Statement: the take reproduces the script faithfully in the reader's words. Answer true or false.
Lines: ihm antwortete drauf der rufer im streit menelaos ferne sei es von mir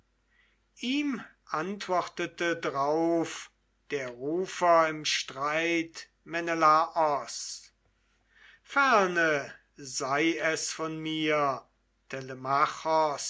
true